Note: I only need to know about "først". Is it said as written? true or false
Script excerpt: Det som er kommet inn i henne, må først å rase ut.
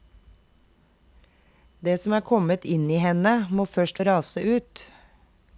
true